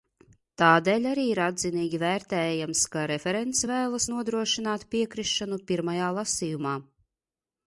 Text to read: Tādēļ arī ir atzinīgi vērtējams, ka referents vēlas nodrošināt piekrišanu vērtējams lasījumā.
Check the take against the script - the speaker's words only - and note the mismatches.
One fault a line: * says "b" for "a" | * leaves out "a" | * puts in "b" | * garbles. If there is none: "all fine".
* says "pirmajā" for "vērtējams"